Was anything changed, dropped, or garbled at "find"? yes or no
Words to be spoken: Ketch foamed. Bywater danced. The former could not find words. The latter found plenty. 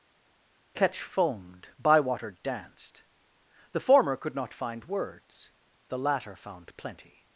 no